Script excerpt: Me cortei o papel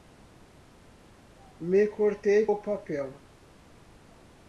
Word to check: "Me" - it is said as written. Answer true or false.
true